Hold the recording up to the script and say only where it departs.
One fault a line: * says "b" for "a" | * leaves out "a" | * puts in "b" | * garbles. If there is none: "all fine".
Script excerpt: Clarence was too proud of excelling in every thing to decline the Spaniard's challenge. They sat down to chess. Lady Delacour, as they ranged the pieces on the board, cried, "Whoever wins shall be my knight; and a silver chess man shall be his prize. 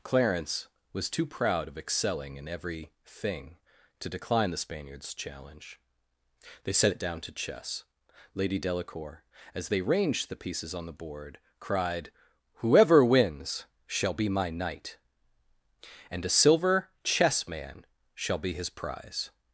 * says "set it" for "sat"